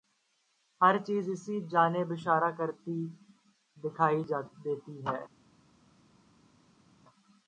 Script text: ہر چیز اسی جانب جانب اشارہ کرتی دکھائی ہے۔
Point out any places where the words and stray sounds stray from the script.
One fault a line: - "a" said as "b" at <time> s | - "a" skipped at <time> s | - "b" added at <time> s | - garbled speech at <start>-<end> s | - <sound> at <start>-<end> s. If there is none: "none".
- "جانب" skipped at 2.1 s
- "دیتی" added at 4.6 s